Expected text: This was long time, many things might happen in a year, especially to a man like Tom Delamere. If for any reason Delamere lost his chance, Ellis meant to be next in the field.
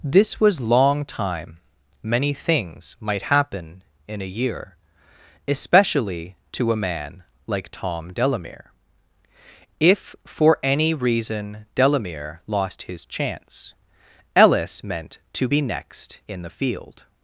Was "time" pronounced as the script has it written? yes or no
yes